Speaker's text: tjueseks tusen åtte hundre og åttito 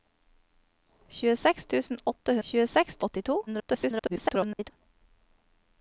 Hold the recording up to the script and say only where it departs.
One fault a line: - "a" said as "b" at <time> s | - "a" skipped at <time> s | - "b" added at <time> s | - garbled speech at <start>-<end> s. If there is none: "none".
- "hundre" said as "tjueseks" at 2.5 s
- garbled speech at 3.5-4.7 s